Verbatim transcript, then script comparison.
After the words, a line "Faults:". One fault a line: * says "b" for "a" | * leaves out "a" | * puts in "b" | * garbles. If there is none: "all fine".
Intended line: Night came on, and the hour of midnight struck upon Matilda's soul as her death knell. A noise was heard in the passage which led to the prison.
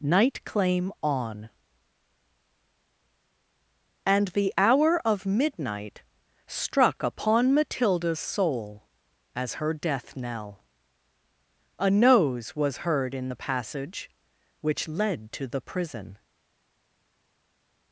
Night claim on, and the hour of midnight struck upon Matilda's soul as her death knell. A nose was heard in the passage which led to the prison.
Faults:
* says "claim" for "came"
* says "nose" for "noise"